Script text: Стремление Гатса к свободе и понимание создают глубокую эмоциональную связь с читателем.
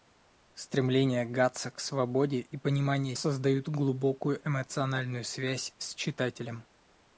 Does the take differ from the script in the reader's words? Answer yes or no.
no